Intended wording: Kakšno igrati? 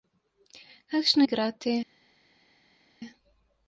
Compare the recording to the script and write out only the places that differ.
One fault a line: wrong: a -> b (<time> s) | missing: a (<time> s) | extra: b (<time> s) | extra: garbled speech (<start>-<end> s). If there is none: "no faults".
no faults